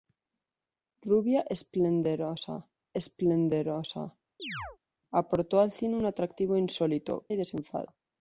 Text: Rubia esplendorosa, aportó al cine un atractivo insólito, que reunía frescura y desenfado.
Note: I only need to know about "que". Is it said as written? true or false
false